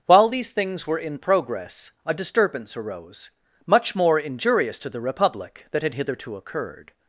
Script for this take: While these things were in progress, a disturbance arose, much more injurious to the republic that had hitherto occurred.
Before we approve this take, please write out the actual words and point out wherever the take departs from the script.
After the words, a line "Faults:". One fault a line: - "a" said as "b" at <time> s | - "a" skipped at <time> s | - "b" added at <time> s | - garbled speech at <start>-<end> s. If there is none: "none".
While these things were in progress, a disturbance arose, much more injurious to the republic that had hitherto occurred.
Faults:
none